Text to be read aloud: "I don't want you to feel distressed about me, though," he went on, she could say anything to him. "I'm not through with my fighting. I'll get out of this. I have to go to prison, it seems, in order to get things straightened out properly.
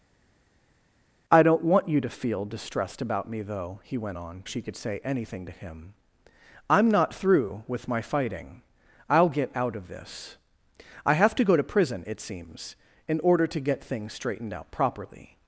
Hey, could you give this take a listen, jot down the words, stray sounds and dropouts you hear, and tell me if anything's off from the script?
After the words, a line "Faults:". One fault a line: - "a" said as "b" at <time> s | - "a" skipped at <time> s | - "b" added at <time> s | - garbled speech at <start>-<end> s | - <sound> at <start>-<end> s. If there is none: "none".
"I don't want you to feel distressed about me, though," he went on, she could say anything to him. "I'm not through with my fighting. I'll get out of this. I have to go to prison, it seems, in order to get things straightened out properly.
Faults:
none